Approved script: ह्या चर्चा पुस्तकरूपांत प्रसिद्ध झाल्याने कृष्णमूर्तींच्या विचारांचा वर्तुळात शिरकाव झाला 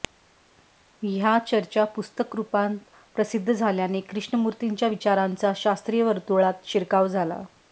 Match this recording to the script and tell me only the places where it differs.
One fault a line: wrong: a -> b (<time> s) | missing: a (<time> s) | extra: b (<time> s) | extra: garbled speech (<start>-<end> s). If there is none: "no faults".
extra: शास्त्रीय (5.5 s)